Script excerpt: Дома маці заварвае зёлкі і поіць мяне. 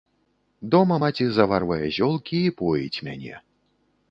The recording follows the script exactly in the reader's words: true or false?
true